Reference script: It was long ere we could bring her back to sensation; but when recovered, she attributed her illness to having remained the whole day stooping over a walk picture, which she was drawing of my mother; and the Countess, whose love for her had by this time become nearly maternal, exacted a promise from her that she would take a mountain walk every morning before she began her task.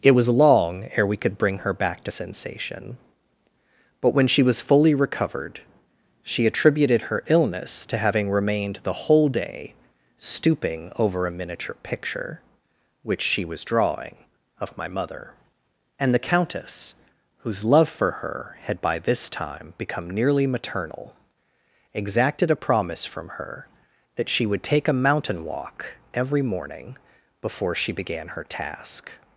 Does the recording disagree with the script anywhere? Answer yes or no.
yes